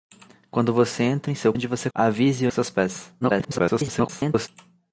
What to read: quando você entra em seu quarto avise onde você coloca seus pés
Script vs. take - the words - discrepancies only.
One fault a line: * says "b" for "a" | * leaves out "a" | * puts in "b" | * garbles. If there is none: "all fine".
* leaves out "quarto avise"
* says "avise" for "coloca"
* garbles